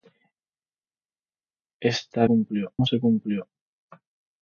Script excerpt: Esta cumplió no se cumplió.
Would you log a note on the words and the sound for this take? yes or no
no